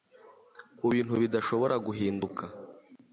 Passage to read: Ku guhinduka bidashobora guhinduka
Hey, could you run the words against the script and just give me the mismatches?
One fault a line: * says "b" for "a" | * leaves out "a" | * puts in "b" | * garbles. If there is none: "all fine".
* says "bintu" for "guhinduka"